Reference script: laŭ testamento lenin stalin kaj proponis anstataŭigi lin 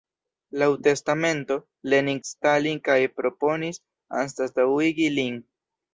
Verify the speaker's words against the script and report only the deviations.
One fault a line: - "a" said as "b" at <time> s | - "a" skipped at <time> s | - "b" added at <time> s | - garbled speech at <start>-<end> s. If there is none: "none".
none